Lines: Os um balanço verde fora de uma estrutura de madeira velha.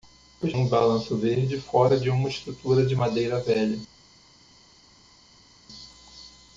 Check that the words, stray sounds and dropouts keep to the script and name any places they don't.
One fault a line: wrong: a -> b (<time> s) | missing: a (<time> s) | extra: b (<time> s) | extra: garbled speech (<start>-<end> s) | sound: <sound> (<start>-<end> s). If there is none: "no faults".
no faults